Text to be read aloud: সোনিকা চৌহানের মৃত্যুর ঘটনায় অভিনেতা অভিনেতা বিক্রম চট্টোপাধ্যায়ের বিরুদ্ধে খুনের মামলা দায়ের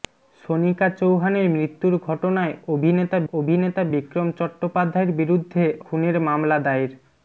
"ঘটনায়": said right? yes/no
yes